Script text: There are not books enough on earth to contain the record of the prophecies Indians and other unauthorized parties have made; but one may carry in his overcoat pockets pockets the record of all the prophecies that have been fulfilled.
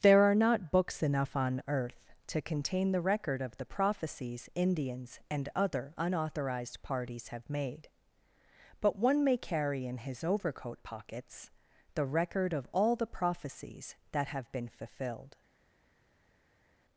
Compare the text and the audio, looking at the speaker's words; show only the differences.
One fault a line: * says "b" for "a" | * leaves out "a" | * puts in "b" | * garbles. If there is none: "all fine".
* leaves out "pockets"